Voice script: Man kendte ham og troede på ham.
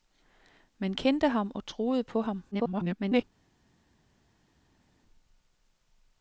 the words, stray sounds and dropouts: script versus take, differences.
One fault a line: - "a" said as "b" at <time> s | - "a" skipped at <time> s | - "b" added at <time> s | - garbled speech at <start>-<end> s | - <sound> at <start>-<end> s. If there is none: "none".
- garbled speech at 2.5-3.2 s